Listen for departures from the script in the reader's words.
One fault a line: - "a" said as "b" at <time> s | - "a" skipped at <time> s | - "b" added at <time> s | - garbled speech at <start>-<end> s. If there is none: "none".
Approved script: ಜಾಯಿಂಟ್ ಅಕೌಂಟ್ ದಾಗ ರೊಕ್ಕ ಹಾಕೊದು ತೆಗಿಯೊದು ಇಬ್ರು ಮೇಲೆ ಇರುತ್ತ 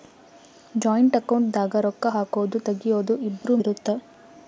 - "ಮೇಲೆ" skipped at 3.6 s